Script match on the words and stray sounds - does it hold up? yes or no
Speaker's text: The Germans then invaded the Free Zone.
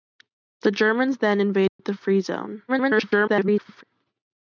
no